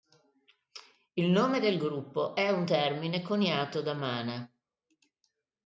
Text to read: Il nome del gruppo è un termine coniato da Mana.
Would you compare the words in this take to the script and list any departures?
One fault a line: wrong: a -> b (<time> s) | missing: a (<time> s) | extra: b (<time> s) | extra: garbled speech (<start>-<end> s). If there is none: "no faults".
no faults